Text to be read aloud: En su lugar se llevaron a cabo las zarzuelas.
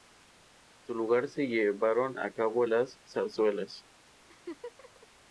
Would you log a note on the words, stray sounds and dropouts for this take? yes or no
yes